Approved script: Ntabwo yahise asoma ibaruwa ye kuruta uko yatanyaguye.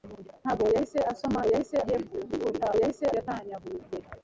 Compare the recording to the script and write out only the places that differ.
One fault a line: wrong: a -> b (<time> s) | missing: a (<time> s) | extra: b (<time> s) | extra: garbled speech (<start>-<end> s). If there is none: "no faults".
wrong: ibaruwa -> yahise (1.5 s)
wrong: uko -> yahise (2.8 s)